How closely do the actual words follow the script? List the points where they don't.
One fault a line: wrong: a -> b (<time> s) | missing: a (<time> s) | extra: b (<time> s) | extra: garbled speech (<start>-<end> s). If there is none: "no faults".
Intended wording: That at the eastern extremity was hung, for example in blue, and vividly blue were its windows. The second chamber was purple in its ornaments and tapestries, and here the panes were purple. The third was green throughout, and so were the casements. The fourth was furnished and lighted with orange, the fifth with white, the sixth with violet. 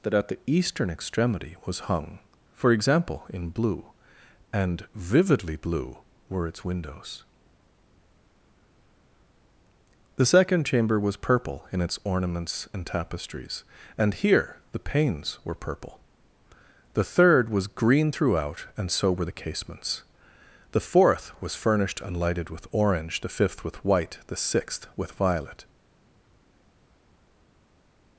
no faults